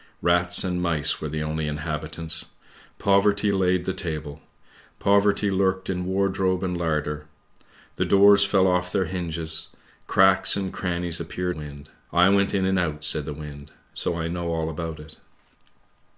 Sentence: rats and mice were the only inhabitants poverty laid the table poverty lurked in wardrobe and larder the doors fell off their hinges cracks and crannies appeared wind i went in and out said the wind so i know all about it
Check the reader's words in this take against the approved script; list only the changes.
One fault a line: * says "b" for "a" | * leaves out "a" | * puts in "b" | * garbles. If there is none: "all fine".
all fine